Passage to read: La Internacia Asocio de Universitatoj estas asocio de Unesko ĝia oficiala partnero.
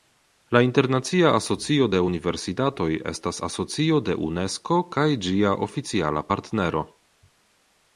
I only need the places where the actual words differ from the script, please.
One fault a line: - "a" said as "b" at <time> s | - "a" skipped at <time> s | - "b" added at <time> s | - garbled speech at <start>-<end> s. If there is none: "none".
- "kaj" added at 5.0 s